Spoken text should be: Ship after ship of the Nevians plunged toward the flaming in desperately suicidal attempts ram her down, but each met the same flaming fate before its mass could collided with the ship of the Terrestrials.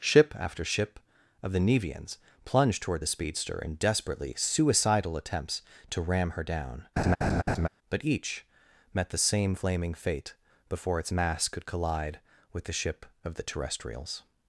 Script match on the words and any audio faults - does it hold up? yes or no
no